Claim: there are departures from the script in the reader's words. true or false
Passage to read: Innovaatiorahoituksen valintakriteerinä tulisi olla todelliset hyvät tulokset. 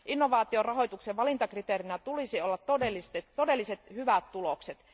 false